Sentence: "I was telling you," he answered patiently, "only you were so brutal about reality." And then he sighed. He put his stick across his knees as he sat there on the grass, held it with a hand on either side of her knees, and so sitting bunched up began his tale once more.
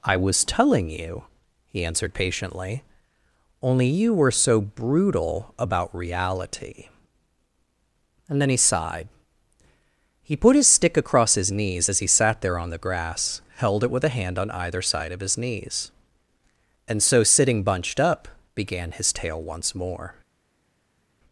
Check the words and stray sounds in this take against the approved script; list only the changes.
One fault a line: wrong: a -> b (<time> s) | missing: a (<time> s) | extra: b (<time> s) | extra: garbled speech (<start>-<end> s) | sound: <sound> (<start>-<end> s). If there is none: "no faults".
wrong: her -> his (15.2 s)